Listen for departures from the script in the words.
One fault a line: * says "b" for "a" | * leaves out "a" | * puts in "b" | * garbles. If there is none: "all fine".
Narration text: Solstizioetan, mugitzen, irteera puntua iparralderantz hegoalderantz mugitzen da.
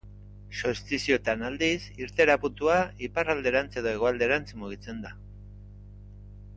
* says "aldiz" for "mugitzen"
* puts in "edo"